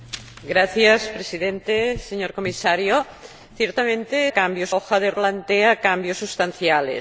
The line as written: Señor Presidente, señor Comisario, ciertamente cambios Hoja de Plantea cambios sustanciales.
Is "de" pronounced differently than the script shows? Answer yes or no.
no